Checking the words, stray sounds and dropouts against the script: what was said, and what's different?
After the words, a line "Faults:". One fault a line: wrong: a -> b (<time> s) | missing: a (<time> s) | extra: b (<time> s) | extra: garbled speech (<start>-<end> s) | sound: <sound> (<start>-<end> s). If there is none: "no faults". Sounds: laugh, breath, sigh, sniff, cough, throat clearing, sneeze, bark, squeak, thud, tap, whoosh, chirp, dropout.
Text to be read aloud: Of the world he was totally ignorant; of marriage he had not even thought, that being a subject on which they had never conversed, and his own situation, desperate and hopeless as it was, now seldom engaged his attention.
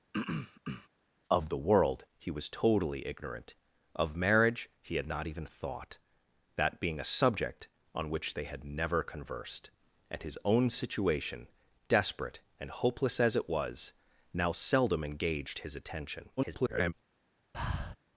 Of the world he was totally ignorant; of marriage he had not even thought, that being a subject on which they had never conversed, and his own situation, desperate and hopeless as it was, now seldom engaged his attention. [garbled]
Faults:
sound: throat clearing (0.1-0.9 s)
extra: garbled speech (16.4-16.9 s)
sound: breath (17.5-18.0 s)